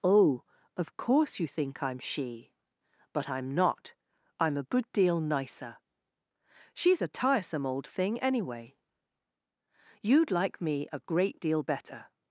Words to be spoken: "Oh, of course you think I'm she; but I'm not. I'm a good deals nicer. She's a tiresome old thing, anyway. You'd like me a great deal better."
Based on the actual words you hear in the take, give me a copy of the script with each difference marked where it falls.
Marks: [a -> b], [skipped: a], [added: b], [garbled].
"Oh, of course you think I'm she; but I'm not. I'm a good [deals -> deal] nicer. She's a tiresome old thing, anyway. You'd like me a great deal better."